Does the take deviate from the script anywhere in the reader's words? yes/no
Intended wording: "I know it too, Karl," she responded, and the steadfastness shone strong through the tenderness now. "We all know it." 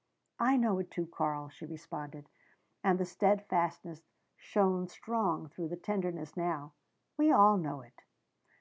no